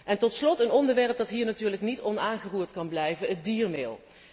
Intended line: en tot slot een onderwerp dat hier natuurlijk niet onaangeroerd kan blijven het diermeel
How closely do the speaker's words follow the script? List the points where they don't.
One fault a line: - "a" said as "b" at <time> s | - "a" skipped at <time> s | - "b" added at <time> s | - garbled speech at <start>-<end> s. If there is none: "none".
none